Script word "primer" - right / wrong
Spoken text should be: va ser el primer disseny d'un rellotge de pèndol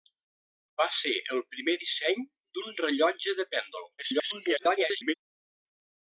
right